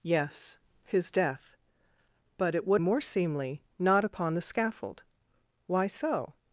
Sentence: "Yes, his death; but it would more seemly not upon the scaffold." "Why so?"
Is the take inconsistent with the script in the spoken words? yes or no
no